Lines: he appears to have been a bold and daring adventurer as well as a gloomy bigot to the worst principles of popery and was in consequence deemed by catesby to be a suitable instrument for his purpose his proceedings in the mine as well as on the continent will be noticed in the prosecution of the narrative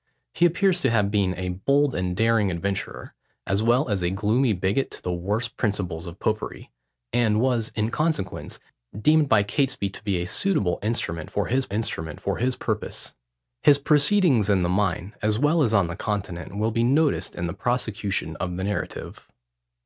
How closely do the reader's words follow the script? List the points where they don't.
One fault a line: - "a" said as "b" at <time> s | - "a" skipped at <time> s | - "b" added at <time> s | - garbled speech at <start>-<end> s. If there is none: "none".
- "instrument for his" added at 11.7 s